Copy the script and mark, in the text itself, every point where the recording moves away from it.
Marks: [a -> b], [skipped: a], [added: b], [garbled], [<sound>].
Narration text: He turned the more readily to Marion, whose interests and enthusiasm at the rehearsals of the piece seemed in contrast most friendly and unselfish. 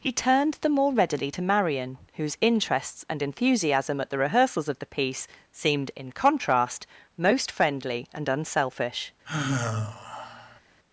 He turned the more readily to Marion, whose interests and enthusiasm at the rehearsals of the piece seemed in contrast most friendly and unselfish. [sigh]